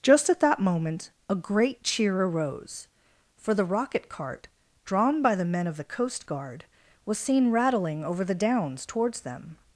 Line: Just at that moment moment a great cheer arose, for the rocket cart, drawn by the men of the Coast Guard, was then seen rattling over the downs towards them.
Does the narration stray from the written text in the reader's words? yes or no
yes